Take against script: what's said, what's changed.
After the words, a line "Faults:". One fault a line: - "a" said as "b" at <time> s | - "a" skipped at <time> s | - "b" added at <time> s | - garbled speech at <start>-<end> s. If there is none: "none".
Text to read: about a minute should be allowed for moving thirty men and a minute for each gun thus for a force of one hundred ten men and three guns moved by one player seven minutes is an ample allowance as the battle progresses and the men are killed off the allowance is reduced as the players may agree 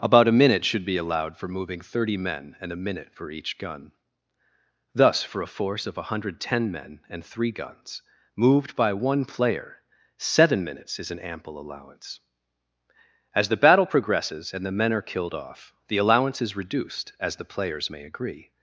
about a minute should be allowed for moving thirty men and a minute for each gun thus for a force of one hundred ten men and three guns moved by one player seven minutes is an ample allowance as the battle progresses and the men are killed off the allowance is reduced as the players may agree
Faults:
none